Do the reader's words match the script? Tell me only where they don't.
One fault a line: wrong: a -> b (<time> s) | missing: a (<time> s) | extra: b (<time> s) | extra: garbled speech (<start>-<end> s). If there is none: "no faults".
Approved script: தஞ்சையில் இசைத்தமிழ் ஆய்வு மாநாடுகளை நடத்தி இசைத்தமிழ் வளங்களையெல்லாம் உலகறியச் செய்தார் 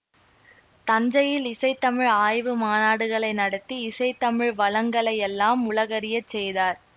no faults